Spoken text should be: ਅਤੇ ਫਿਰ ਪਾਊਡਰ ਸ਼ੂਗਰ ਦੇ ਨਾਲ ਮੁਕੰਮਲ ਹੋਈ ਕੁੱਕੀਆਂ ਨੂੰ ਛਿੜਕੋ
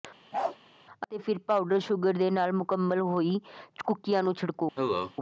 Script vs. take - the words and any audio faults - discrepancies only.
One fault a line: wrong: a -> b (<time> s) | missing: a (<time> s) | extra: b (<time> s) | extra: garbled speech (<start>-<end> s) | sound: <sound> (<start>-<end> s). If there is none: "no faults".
sound: bark (0.3-0.6 s)
sound: cough (4.8-5.1 s)